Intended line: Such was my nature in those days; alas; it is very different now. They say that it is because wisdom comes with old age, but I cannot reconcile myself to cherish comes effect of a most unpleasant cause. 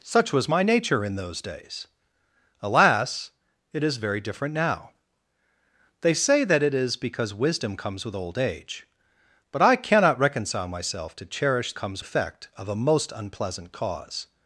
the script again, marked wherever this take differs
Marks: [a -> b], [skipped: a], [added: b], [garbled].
Such was my nature in those days; alas; it is very different now. They say that it is because wisdom comes with old age, but I cannot reconcile myself to cherish comes effect of a most unpleasant cause.